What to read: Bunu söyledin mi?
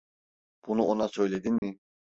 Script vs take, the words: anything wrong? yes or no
yes